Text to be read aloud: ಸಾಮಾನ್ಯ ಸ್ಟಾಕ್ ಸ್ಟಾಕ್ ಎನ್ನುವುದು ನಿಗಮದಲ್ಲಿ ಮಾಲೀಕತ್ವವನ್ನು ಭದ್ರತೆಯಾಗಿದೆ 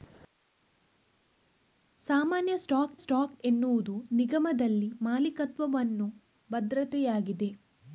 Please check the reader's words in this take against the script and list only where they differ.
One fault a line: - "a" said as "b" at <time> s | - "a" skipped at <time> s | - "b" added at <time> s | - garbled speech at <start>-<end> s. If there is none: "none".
none